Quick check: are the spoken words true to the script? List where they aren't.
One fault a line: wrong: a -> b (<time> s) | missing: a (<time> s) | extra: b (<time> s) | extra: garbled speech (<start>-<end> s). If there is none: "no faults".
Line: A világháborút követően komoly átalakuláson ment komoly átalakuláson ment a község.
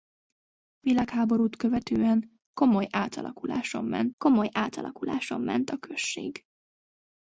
no faults